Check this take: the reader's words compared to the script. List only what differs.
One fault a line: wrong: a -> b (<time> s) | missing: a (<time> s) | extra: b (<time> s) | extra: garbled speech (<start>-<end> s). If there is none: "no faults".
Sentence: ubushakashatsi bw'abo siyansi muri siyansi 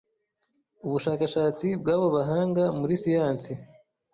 wrong: siyansi -> bahanga (2.1 s)